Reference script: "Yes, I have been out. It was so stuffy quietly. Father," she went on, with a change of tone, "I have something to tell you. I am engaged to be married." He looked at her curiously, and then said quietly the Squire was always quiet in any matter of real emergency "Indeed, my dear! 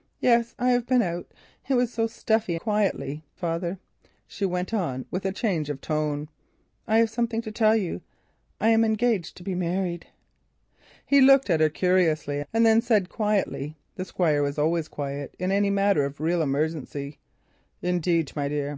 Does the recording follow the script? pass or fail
pass